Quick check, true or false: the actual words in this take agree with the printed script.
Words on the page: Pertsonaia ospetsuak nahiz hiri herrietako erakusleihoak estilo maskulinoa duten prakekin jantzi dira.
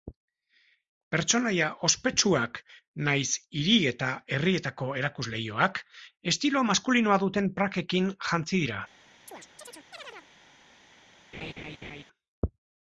false